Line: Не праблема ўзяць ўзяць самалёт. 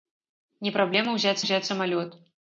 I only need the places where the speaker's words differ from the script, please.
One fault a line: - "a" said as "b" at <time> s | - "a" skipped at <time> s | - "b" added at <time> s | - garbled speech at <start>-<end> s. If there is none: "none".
none